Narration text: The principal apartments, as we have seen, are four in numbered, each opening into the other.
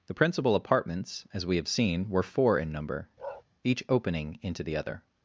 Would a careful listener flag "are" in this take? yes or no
yes